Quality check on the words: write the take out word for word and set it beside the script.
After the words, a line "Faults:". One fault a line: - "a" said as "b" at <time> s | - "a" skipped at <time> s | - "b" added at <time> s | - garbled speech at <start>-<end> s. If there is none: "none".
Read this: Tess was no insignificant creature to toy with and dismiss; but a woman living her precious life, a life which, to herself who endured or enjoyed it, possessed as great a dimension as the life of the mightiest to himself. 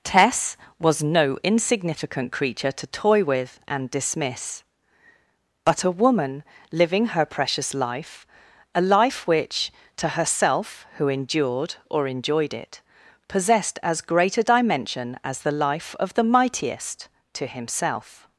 Tess was no insignificant creature to toy with and dismiss; but a woman living her precious life, a life which, to herself who endured or enjoyed it, possessed as great a dimension as the life of the mightiest to himself.
Faults:
none